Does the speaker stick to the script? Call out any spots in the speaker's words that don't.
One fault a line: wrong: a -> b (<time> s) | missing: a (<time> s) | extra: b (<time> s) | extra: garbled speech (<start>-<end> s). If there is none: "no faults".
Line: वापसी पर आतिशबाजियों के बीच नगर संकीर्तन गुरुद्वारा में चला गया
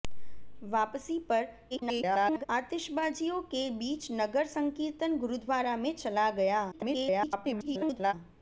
extra: garbled speech (1.7-2.5 s)
extra: garbled speech (6.7-8.1 s)